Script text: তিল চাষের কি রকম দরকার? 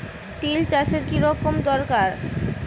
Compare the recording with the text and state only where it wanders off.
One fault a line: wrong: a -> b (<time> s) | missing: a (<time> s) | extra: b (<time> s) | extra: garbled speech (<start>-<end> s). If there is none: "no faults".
no faults